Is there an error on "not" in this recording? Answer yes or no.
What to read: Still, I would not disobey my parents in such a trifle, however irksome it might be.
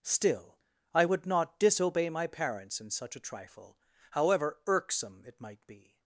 no